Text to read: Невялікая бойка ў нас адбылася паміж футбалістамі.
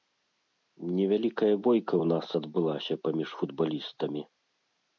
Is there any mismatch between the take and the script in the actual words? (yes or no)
no